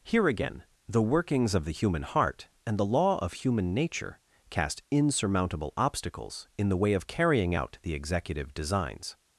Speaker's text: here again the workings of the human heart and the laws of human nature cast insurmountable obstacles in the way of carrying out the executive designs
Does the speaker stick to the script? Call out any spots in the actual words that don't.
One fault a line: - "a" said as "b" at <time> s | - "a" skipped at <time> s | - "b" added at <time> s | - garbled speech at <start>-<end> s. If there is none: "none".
- "laws" said as "law" at 2.9 s